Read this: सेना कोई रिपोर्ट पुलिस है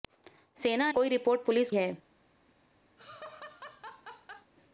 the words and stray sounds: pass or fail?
fail